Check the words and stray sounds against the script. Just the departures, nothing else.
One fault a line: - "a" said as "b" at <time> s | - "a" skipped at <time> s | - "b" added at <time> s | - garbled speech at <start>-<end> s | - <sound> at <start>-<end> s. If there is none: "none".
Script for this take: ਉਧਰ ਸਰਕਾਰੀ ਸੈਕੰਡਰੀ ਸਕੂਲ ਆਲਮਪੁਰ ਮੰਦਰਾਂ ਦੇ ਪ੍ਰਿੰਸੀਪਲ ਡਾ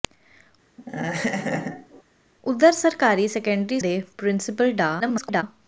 - laugh at 0.8-2.0 s
- "ਸਕੂਲ ਆਲਮਪੁਰ ਮੰਦਰਾਂ" skipped at 3.8 s
- garbled speech at 5.0-5.4 s